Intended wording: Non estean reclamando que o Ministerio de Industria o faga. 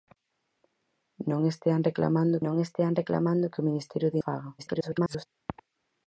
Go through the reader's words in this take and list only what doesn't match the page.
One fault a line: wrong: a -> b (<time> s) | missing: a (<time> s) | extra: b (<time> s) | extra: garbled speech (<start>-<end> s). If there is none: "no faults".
extra: non estean reclamando (2.4 s)
missing: Industria (4.2 s)
extra: garbled speech (4.6-5.3 s)